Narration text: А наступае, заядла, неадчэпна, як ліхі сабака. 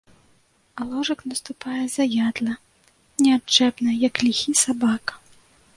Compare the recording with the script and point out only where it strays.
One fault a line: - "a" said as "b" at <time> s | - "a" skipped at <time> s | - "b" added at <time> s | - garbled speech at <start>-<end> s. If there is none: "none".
- "ложак" added at 0.9 s